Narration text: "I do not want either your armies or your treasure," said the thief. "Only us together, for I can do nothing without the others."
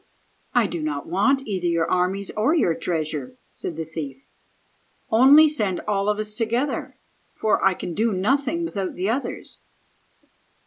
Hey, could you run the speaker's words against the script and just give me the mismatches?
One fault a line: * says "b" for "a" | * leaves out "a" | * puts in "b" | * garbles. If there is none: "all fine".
* puts in "send all of"